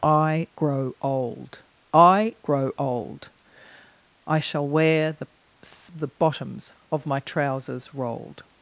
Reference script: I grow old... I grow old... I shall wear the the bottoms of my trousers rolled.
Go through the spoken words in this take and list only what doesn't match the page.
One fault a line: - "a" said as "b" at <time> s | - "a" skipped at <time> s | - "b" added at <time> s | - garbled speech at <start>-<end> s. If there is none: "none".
none